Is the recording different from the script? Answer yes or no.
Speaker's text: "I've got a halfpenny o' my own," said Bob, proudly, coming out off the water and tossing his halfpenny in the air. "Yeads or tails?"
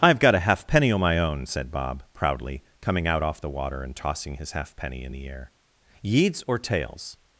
no